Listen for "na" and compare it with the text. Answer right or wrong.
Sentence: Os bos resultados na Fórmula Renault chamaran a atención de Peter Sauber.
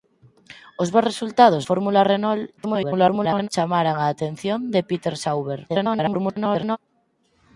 wrong